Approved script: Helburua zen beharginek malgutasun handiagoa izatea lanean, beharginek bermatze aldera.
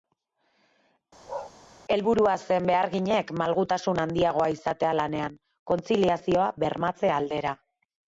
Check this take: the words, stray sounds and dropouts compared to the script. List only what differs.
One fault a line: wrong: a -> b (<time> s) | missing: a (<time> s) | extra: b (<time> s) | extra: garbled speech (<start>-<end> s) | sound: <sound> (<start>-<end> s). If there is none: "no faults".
sound: bark (1.3-1.5 s)
wrong: beharginek -> kontziliazioa (5.7 s)